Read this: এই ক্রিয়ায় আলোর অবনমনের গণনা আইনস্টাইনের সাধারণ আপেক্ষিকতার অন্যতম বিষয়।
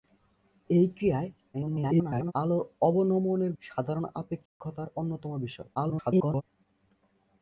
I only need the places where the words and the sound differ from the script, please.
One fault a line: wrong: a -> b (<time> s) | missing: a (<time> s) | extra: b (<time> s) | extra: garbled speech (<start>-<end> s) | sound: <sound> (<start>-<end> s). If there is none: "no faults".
extra: garbled speech (1.5-2.3 s)
missing: গণনা আইনস্টাইনের (3.5 s)
sound: dropout (4.5-4.6 s)
extra: garbled speech (5.7-6.4 s)